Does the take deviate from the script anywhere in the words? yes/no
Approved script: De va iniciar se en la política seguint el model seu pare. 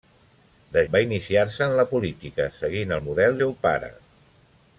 no